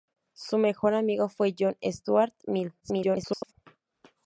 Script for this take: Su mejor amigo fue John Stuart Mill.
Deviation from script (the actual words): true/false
true